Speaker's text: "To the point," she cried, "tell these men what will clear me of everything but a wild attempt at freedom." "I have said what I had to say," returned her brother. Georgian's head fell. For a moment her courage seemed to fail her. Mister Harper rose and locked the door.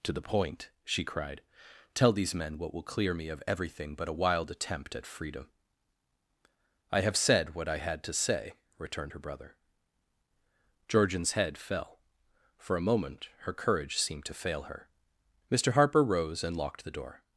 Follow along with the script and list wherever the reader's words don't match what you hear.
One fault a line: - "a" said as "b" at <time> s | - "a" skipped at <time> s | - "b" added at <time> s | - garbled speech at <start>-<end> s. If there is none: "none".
none